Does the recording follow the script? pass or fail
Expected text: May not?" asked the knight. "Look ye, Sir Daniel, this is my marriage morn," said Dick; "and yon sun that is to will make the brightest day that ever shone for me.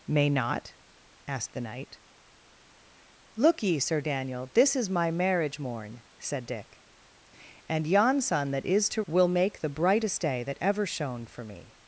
pass